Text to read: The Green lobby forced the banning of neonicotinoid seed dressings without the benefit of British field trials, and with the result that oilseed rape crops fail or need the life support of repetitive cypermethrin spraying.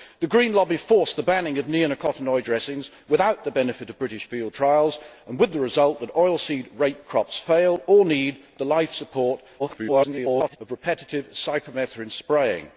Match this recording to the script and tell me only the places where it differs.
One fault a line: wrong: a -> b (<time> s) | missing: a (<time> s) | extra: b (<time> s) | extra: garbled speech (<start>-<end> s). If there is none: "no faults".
missing: seed (2.5 s)
extra: garbled speech (9.6-10.6 s)